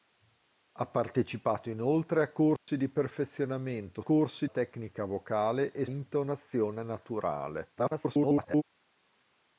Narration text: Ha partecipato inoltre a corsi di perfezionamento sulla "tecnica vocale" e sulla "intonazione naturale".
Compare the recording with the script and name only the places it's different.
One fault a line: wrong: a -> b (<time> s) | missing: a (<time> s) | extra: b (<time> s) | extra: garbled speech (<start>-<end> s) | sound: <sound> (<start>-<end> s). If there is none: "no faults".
sound: dropout (2.6-2.7 s)
wrong: sulla -> corsi (4.0 s)
missing: sulla (5.9 s)
extra: garbled speech (7.8-8.6 s)